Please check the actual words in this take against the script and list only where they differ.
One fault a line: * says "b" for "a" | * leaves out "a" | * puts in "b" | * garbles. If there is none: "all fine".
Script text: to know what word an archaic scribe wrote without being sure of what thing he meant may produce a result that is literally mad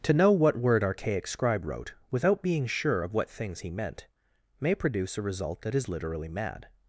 * leaves out "an"
* says "things" for "thing"